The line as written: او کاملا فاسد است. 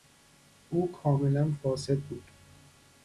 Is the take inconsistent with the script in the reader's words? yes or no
yes